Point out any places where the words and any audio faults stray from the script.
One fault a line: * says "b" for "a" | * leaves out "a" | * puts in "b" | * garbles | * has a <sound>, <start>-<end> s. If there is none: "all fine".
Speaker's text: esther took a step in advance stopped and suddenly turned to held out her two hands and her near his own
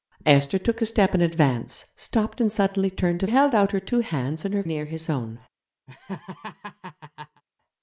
* has a laugh, 5.9-7.4 s